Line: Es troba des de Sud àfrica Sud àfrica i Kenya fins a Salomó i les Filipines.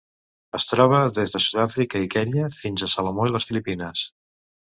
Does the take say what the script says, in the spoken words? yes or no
no